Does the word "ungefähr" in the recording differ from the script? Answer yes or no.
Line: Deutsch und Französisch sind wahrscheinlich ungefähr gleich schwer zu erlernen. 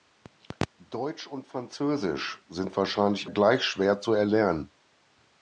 yes